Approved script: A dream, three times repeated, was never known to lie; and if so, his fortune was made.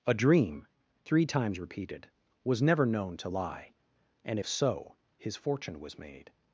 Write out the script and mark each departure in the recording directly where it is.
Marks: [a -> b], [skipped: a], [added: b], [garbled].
A dream, three times repeated, was never known to lie; and if so, his fortune was made.